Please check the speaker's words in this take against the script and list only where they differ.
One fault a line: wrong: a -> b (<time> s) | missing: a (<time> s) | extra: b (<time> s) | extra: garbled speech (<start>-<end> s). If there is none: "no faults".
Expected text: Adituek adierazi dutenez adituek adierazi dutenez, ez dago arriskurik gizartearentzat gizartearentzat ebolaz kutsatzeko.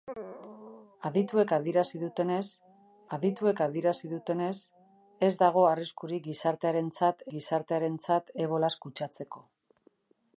no faults